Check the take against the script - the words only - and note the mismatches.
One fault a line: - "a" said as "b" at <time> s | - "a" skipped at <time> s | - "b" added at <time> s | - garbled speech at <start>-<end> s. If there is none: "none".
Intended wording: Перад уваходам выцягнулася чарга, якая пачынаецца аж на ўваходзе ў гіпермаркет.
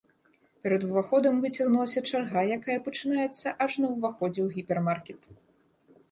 none